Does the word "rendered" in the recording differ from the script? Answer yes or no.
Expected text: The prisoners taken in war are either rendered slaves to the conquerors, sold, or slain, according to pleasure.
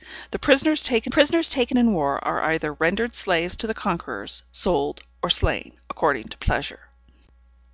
no